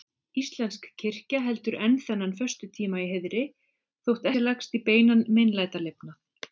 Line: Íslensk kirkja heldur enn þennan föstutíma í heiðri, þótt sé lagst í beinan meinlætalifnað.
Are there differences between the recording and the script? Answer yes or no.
no